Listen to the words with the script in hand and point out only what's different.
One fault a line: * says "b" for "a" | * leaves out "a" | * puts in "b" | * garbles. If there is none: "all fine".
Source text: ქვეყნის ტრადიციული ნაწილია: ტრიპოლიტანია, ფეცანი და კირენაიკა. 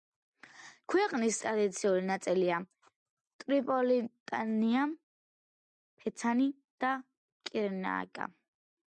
all fine